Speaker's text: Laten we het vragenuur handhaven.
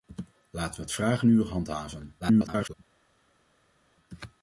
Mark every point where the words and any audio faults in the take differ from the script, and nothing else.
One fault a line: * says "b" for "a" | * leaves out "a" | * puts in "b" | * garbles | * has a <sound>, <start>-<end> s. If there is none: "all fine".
* garbles